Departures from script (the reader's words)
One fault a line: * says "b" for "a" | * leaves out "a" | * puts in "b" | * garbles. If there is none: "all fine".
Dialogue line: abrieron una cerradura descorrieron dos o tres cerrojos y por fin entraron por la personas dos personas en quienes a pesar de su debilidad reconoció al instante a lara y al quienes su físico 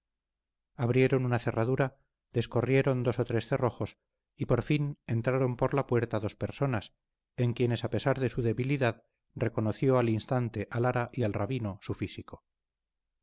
* says "puerta" for "personas"
* says "rabino" for "quienes"